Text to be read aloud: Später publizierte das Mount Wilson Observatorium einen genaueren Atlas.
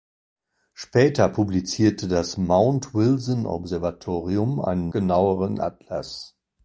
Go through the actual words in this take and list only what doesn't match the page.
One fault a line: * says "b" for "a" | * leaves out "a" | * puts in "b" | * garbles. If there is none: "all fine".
all fine